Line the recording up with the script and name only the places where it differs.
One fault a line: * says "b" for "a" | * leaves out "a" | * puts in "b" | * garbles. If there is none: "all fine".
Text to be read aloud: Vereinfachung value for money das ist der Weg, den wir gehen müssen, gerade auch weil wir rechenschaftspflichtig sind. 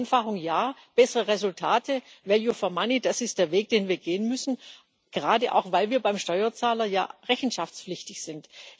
* puts in "ja bessere Resultate"
* puts in "beim Steuerzahler ja"